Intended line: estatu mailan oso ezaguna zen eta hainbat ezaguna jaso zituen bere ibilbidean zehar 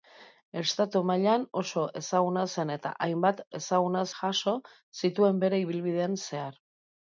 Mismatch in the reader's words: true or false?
false